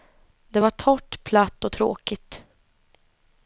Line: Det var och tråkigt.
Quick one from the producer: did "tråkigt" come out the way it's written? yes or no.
yes